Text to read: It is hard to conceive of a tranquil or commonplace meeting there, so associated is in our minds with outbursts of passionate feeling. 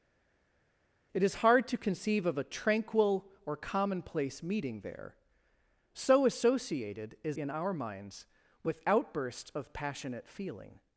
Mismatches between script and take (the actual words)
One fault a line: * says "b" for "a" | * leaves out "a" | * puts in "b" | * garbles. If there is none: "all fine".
all fine